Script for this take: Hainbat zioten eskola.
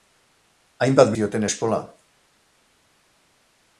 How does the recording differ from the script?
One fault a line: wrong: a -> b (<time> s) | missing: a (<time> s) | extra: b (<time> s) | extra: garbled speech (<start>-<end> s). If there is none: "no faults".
no faults